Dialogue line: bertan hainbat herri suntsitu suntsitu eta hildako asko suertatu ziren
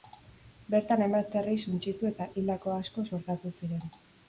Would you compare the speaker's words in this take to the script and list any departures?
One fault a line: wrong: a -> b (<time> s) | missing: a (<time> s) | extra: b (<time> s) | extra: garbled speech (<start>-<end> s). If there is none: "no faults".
missing: suntsitu (2.1 s)